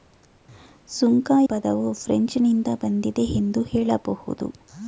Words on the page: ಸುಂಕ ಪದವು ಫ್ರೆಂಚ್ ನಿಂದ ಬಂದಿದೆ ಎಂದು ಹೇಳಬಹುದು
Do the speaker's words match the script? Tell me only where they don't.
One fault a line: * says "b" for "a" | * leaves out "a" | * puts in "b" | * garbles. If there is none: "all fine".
all fine